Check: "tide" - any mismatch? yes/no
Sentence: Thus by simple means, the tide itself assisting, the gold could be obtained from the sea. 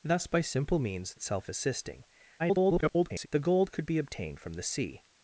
yes